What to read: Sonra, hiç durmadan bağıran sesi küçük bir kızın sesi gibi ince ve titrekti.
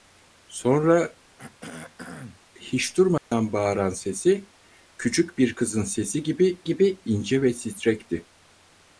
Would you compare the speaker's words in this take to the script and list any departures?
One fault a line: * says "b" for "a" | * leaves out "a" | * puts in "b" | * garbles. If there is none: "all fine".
* puts in "gibi"